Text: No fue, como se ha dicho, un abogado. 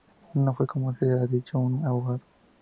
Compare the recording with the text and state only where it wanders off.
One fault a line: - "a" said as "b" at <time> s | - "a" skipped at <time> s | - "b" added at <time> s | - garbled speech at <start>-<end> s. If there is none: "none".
none